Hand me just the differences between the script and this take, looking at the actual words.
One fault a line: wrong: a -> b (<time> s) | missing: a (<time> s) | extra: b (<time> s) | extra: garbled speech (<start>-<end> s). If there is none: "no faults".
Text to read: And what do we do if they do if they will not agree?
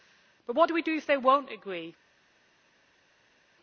wrong: And -> But (0.5 s)
missing: do if they (1.2 s)